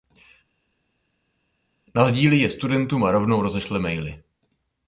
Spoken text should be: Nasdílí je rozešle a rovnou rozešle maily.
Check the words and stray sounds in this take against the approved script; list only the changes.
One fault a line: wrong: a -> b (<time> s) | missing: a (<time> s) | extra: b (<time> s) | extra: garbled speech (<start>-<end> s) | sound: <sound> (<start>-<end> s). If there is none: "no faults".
wrong: rozešle -> studentům (2.5 s)